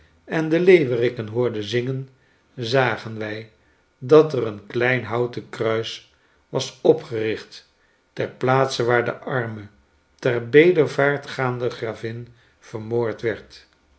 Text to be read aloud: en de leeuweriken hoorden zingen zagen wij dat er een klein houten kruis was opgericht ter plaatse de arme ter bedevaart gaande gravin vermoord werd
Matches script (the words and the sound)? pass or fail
fail